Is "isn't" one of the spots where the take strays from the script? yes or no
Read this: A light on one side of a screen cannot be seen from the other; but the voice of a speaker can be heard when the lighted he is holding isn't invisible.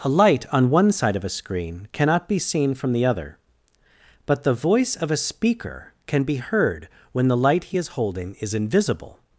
yes